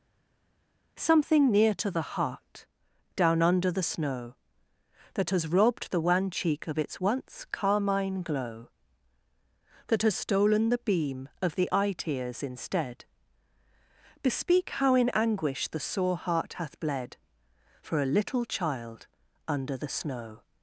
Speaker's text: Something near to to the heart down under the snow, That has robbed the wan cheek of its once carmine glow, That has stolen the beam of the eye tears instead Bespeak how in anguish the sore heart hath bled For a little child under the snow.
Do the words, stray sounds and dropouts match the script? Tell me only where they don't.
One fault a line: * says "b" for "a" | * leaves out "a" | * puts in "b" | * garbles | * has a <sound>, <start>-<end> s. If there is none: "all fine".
* leaves out "to"